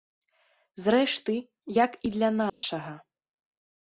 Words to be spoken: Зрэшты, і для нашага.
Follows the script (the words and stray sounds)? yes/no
no